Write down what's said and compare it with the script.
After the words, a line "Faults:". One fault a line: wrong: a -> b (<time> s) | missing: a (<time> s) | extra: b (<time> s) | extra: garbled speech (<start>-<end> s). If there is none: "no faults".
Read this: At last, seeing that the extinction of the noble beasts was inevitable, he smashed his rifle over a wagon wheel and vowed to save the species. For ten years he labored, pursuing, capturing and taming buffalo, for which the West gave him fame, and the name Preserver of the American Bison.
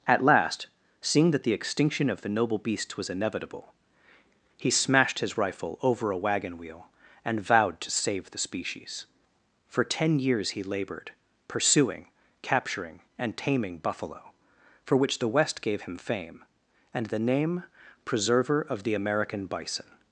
At last, seeing that the extinction of the noble beasts was inevitable, he smashed his rifle over a wagon wheel and vowed to save the species. For ten years he labored, pursuing, capturing and taming buffalo, for which the West gave him fame, and the name Preserver of the American Bison.
Faults:
no faults